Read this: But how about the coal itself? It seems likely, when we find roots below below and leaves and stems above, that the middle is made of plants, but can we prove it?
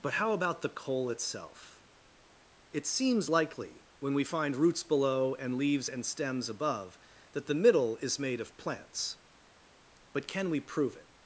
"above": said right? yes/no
yes